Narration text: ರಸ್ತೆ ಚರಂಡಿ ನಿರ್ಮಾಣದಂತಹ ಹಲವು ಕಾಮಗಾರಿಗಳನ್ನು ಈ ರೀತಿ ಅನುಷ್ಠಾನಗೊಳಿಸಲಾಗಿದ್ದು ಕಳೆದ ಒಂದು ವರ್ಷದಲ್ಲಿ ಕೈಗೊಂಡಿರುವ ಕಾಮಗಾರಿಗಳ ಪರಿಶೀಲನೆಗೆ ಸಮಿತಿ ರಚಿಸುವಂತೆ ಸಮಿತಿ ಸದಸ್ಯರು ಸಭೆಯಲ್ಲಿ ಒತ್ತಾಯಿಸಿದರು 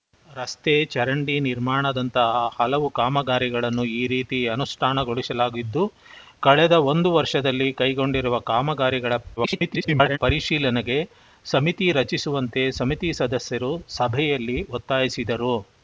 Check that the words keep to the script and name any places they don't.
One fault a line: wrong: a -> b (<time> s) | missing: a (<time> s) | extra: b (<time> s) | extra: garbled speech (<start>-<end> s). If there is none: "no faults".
extra: garbled speech (9.4-10.2 s)